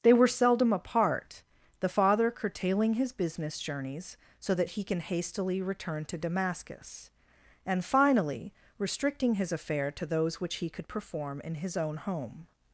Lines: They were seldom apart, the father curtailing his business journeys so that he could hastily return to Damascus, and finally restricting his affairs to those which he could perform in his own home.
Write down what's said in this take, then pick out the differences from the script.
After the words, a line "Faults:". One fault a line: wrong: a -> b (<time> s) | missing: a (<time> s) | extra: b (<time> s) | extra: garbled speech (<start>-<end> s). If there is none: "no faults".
They were seldom apart, the father curtailing his business journeys so that he can hastily return to Damascus, and finally restricting his affair to those which he could perform in his own home.
Faults:
wrong: could -> can (4.8 s)
wrong: affairs -> affair (9.5 s)